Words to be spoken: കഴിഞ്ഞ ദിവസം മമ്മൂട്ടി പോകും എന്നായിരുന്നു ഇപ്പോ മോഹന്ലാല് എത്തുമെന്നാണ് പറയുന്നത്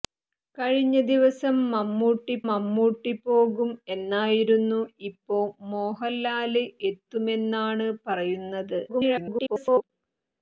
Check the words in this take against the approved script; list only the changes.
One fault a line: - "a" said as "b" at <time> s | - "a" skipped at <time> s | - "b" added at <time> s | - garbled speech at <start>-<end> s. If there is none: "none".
- "മമ്മൂട്ടി" added at 2.5 s
- garbled speech at 8.9-9.9 s